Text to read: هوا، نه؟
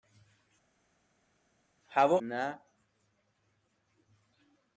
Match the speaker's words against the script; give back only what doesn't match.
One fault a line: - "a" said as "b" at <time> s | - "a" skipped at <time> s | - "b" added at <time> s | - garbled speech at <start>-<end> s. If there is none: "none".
none